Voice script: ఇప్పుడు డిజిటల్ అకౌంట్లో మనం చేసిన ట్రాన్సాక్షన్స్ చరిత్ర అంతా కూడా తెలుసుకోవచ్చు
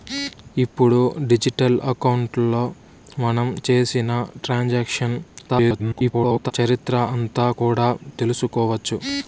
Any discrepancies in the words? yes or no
yes